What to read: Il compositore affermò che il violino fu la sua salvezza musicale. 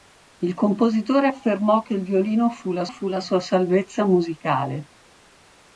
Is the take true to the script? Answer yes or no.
no